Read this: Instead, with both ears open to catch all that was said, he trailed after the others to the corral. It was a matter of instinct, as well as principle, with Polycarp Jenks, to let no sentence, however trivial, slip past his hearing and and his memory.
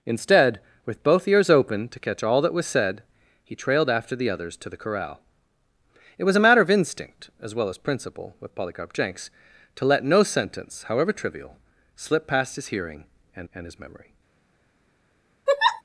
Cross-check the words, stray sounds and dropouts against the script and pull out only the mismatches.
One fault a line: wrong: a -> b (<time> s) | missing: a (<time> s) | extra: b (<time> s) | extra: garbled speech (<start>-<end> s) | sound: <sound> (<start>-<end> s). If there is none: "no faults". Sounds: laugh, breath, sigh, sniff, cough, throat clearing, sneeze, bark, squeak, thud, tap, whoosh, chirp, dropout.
sound: laugh (15.5-15.8 s)